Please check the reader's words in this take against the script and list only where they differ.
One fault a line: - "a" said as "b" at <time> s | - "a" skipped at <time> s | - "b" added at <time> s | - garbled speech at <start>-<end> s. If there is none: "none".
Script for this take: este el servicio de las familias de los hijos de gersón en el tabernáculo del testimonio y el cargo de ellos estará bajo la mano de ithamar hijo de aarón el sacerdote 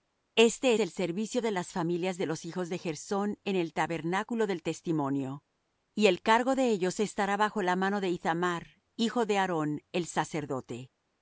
none